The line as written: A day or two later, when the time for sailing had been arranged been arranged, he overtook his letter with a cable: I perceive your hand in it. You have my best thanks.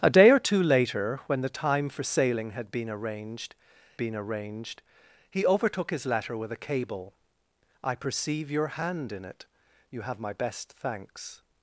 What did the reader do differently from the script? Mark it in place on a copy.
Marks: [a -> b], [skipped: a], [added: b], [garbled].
A day or two later, when the time for sailing had been arranged been arranged, he overtook his letter with a cable: I perceive your hand in it. You have my best thanks.